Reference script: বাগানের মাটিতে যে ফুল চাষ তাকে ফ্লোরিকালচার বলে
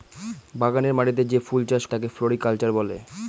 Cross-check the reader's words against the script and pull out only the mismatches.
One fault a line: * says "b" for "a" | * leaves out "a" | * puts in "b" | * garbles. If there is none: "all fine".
all fine